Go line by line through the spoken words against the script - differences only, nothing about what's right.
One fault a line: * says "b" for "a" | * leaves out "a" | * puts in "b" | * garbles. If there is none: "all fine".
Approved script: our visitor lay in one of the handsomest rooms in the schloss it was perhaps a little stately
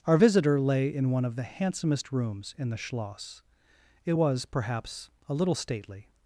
all fine